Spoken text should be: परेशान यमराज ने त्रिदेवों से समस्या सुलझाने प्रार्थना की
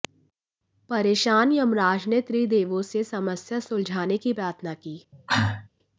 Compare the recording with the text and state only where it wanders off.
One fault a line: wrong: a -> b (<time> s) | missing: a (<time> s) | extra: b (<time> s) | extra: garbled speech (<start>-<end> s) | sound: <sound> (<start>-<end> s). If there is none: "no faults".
extra: की (4.2 s)
sound: cough (5.1-5.7 s)